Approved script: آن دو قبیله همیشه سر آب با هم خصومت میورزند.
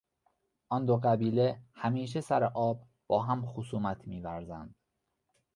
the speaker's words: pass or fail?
pass